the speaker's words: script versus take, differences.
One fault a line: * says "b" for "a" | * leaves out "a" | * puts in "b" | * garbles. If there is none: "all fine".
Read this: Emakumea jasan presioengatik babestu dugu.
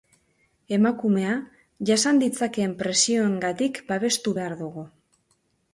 * puts in "ditzakeen"
* puts in "behar"